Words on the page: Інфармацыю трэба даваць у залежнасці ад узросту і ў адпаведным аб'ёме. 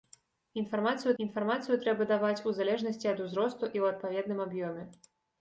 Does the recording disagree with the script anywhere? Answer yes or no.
yes